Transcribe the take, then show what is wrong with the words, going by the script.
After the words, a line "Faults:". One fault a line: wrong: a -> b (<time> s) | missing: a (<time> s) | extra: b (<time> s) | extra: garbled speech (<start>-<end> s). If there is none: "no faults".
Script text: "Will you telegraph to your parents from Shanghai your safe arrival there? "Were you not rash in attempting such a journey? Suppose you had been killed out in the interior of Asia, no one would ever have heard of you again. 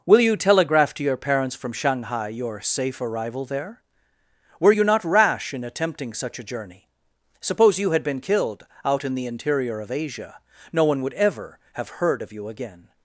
"Will you telegraph to your parents from Shanghai your safe arrival there? "Were you not rash in attempting such a journey? Suppose you had been killed out in the interior of Asia, no one would ever have heard of you again.
Faults:
no faults